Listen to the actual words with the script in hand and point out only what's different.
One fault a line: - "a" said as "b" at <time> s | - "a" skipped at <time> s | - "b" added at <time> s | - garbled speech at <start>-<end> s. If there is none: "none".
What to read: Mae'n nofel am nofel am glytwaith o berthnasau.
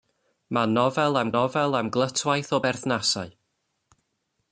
none